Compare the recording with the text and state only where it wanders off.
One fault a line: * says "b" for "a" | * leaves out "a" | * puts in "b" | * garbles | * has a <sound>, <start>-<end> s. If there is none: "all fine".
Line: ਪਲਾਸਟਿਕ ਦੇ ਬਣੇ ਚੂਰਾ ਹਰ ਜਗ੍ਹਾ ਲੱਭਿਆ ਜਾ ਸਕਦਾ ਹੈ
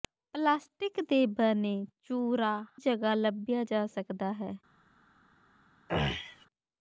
* leaves out "ਹਰ"
* has a throat clearing, 5.9-6.5 s